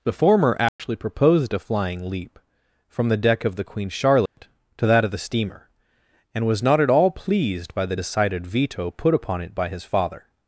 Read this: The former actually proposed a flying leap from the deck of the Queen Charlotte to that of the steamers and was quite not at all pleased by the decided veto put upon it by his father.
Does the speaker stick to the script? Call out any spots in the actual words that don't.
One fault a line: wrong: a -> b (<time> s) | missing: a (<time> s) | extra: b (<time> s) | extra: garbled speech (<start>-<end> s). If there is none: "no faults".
wrong: steamers -> steamer (5.2 s)
missing: quite (6.6 s)